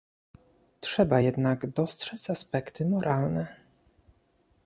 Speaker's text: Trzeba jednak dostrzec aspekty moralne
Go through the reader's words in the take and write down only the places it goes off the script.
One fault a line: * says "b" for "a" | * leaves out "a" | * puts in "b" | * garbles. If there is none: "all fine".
all fine